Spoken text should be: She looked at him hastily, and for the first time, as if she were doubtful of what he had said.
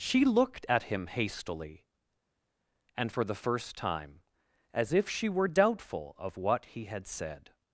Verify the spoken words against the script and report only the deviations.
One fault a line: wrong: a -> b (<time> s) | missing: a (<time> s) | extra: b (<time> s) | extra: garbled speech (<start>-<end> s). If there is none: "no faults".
no faults